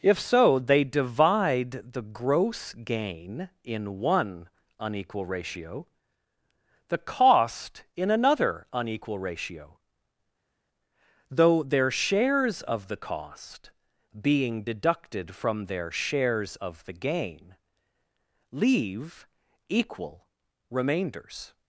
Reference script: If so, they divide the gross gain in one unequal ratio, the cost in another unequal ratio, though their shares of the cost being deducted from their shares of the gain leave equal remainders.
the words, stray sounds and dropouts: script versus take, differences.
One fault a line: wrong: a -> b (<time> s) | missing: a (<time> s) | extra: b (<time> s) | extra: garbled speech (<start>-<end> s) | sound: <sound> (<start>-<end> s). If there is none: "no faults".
no faults